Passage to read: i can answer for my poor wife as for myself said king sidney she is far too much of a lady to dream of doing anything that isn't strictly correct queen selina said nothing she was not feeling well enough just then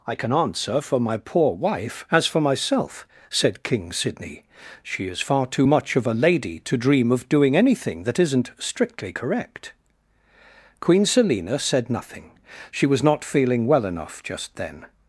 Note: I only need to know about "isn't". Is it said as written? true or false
true